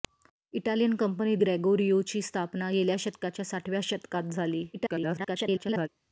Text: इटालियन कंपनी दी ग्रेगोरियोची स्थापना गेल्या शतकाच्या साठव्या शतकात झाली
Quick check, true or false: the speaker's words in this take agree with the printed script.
false